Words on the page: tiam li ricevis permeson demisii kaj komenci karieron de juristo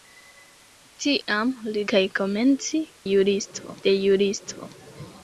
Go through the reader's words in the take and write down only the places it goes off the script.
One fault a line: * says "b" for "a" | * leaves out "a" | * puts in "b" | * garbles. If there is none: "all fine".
* leaves out "ricevis permeson demisii"
* says "juristo" for "karieron"